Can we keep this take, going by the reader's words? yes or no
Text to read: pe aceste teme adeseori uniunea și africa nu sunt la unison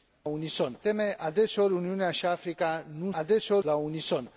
no